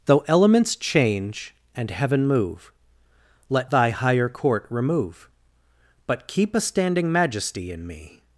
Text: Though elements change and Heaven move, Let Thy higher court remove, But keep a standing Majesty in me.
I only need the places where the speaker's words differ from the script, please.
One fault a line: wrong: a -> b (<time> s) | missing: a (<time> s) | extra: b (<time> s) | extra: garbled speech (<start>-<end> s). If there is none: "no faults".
no faults